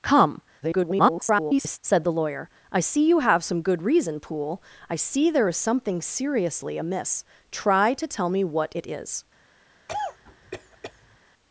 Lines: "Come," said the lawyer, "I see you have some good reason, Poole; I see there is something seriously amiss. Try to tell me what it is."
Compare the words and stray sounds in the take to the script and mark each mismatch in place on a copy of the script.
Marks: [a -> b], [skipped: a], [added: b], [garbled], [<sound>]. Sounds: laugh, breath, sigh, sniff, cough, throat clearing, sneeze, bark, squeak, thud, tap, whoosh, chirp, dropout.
"Come," [garbled] said the lawyer, "I see you have some good reason, Poole; I see there is something seriously amiss. Try to tell me what it is." [cough]